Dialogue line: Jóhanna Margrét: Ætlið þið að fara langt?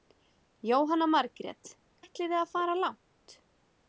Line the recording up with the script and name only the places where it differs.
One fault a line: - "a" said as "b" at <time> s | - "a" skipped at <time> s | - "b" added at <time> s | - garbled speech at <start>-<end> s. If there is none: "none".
none